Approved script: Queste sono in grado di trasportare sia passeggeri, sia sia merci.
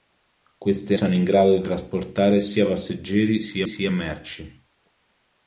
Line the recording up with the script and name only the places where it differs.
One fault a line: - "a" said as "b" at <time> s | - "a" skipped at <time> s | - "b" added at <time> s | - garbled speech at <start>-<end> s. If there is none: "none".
none